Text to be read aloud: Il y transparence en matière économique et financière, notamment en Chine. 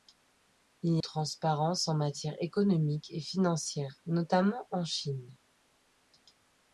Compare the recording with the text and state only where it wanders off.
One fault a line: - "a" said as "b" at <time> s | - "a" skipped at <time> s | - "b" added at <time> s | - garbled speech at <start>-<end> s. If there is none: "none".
none